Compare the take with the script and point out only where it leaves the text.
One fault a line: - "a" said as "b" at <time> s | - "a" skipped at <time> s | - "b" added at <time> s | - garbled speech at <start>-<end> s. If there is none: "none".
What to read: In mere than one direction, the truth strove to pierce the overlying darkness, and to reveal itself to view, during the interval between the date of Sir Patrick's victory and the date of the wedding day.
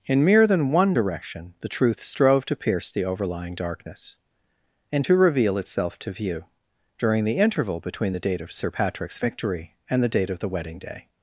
none